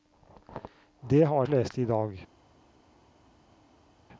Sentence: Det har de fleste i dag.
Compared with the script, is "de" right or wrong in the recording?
wrong